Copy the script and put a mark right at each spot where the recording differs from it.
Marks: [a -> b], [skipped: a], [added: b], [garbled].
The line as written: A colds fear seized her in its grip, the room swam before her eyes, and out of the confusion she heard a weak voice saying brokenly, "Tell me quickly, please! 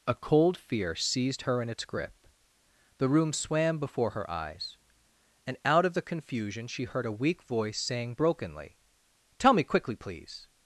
A [colds -> cold] fear seized her in its grip, the room swam before her eyes, and out of the confusion she heard a weak voice saying brokenly, "Tell me quickly, please!